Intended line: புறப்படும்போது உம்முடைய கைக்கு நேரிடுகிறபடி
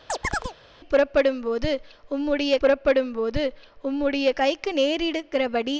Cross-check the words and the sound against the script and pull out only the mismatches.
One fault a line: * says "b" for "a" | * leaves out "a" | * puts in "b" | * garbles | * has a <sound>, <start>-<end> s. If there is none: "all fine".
* has a chirp, 0.1-0.5 s
* puts in "புறப்படும்போது உம்முடைய"